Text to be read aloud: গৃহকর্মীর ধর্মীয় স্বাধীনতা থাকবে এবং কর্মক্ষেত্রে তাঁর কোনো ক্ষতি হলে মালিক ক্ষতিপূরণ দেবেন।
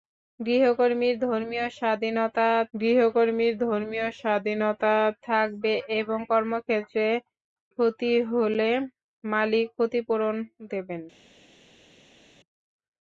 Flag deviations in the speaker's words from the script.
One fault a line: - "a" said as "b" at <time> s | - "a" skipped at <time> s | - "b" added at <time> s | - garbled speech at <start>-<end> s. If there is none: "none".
- "গৃহকর্মীর ধর্মীয় স্বাধীনতা" added at 2.7 s
- "তাঁর কোনো" skipped at 7.1 s